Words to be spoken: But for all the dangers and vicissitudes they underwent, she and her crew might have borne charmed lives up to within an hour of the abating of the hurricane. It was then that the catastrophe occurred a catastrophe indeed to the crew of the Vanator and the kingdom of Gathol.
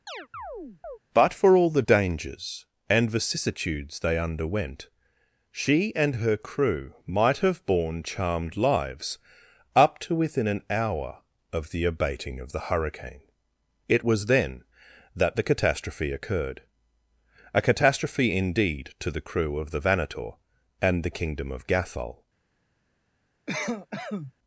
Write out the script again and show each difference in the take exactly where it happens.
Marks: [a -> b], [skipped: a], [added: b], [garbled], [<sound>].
[chirp] But for all the dangers and vicissitudes they underwent, she and her crew might have borne charmed lives up to within an hour of the abating of the hurricane. It was then that the catastrophe occurred a catastrophe indeed to the crew of the Vanator and the kingdom of Gathol. [cough]